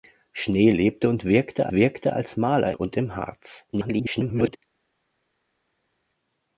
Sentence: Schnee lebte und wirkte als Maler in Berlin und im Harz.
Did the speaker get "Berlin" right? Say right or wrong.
wrong